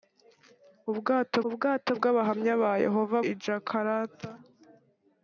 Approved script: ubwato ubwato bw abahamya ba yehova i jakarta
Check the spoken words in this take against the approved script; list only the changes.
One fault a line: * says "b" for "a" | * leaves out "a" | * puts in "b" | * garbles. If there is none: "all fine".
all fine